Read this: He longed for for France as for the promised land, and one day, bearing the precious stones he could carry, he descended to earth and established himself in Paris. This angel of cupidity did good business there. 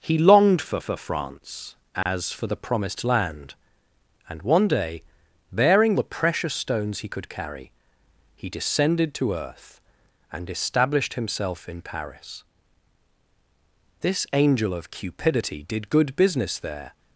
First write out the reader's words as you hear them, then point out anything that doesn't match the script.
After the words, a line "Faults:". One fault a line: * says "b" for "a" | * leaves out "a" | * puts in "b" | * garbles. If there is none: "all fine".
He longed for for France as for the promised land, and one day, bearing the precious stones he could carry, he descended to earth and established himself in Paris. This angel of cupidity did good business there.
Faults:
all fine